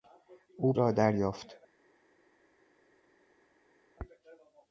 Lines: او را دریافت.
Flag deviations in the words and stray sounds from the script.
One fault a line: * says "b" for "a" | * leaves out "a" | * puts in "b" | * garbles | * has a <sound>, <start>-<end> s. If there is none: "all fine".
all fine